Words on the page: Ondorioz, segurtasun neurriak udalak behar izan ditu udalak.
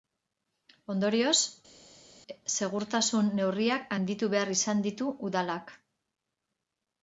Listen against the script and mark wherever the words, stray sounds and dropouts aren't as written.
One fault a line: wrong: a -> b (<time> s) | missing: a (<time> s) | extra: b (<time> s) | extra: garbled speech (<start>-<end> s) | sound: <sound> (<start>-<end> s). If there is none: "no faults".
wrong: udalak -> handitu (4.0 s)